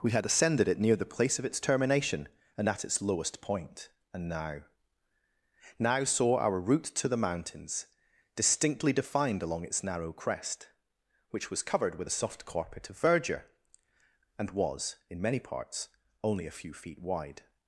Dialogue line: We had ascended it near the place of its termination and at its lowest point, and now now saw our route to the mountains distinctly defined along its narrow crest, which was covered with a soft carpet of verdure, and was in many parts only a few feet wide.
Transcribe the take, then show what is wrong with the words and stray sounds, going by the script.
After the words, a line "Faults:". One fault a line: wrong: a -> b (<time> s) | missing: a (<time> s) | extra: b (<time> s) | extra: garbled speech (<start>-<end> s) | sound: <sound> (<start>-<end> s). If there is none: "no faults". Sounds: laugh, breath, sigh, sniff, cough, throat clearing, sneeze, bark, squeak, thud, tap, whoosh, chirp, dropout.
We had ascended it near the place of its termination and at its lowest point, and now now saw our route to the mountains distinctly defined along its narrow crest, which was covered with a soft carpet of verdure, and was in many parts only a few feet wide.
Faults:
no faults